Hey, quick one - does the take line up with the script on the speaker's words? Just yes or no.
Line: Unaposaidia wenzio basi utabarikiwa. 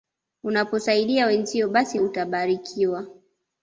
yes